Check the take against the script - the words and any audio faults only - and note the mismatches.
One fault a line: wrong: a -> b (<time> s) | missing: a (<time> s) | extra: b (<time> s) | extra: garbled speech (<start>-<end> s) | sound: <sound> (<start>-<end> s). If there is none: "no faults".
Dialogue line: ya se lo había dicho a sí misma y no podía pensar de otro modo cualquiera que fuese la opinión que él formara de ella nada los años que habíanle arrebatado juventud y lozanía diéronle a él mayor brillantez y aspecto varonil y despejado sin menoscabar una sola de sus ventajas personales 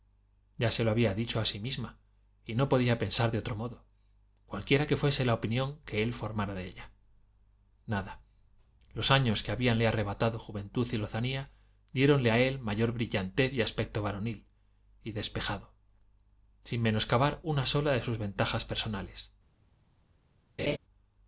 sound: laugh (20.6-20.8 s)